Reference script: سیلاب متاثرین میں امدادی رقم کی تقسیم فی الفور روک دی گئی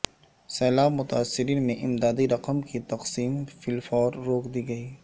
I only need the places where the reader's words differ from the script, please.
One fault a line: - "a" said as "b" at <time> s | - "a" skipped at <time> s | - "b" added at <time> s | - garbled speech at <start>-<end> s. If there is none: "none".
none